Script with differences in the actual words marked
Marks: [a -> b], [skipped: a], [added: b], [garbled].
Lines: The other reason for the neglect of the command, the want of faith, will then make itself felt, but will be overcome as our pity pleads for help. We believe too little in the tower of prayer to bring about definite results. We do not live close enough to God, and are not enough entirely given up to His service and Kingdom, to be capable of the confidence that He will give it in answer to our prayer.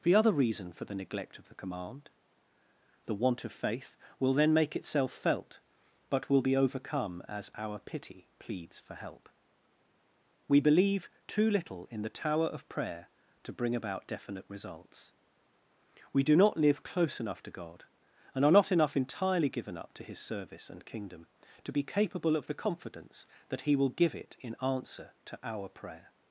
The other reason for the neglect of the command, the want of faith, will then make itself felt, but will be overcome as our pity pleads for help. We believe too little in the tower of prayer to bring about definite results. We do not live close enough to God, and are not enough entirely given up to His service and Kingdom, to be capable of the confidence that He will give it in answer to our prayer.